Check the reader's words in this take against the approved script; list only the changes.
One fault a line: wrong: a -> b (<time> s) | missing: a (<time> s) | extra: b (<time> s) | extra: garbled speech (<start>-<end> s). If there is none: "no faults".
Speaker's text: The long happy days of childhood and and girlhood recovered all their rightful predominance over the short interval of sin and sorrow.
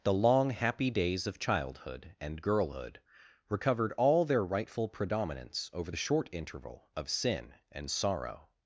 missing: and (2.4 s)